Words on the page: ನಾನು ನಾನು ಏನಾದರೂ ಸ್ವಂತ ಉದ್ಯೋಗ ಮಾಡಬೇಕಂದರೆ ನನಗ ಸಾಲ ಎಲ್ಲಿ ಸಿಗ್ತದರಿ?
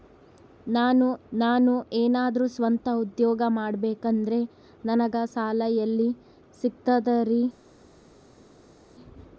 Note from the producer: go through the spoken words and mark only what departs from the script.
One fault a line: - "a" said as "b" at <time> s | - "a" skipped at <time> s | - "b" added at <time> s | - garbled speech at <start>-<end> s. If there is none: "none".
none